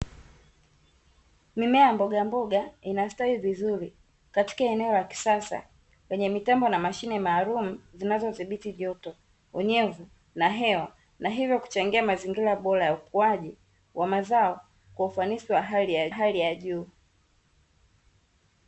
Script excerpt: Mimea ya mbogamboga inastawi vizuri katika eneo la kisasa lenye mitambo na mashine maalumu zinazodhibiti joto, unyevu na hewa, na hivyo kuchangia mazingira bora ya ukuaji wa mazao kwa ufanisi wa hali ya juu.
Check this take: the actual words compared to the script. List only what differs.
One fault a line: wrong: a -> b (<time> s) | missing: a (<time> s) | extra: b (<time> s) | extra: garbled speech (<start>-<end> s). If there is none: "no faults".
extra: hali ya (16.1 s)